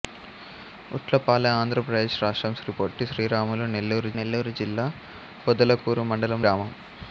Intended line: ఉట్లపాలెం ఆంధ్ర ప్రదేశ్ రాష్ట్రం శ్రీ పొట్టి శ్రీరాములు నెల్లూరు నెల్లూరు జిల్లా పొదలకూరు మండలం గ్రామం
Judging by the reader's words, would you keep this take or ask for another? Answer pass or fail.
pass